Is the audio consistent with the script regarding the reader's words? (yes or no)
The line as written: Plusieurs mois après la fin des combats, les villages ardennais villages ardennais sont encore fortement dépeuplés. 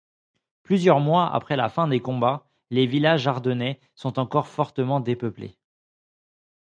no